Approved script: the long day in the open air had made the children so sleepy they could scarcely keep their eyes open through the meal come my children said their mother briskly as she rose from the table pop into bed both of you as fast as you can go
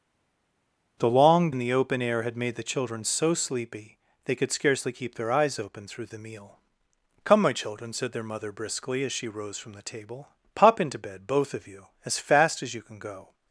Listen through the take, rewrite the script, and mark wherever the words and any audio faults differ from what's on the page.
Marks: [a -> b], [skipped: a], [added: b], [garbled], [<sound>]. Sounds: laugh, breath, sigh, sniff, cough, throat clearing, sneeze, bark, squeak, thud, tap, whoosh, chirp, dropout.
the long [skipped: day] in the open air had made the children so sleepy they could scarcely keep their eyes open through the meal come my children said their mother briskly as she rose from the table pop into bed both of you as fast as you can go